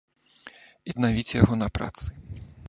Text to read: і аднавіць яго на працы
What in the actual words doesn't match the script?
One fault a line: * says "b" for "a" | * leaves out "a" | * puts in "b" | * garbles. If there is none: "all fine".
all fine